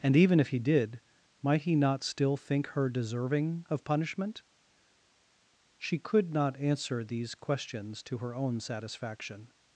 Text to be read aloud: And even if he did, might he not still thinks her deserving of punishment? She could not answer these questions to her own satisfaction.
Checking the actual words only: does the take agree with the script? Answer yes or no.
no